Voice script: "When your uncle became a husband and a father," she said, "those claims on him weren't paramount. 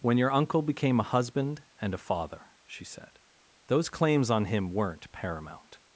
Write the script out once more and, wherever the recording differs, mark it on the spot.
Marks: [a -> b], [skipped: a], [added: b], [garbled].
"When your uncle became a husband and a father," she said, "those claims on him weren't paramount.